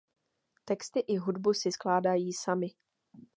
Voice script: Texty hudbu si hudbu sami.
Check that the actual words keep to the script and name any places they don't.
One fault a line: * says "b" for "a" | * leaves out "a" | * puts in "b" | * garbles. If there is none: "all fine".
* puts in "i"
* says "skládají" for "hudbu"